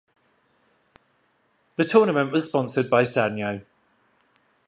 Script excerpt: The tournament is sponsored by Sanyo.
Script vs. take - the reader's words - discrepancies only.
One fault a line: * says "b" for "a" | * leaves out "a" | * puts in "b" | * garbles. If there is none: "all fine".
* says "was" for "is"